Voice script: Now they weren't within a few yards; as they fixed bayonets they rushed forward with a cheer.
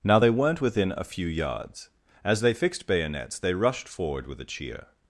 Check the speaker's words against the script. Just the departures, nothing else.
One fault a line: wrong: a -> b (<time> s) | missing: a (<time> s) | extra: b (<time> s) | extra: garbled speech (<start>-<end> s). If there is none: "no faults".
no faults